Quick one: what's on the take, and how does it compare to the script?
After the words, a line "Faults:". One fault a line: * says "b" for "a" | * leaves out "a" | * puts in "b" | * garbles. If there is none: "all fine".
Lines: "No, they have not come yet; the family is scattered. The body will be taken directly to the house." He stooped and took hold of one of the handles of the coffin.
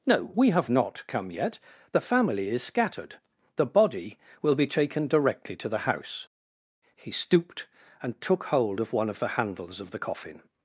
"No, we have not come yet; the family is scattered. The body will be taken directly to the house." He stooped and took hold of one of the handles of the coffin.
Faults:
* says "we" for "they"